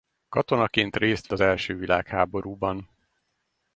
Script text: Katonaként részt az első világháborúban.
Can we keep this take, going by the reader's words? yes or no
yes